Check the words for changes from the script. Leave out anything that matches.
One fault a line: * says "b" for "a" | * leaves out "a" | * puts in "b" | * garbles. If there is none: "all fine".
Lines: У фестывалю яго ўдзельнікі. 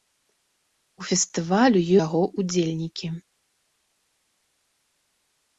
all fine